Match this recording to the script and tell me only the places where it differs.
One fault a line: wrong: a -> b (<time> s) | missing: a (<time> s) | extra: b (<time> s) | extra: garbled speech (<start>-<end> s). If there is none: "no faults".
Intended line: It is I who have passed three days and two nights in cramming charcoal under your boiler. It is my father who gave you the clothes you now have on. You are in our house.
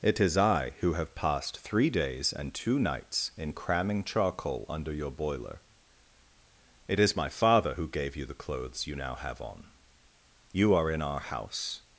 no faults